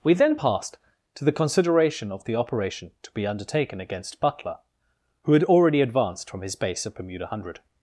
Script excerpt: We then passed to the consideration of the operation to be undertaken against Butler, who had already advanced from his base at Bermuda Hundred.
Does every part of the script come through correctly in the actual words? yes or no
yes